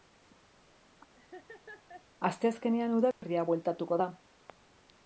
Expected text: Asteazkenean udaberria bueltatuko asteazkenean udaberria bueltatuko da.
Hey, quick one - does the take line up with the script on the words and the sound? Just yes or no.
no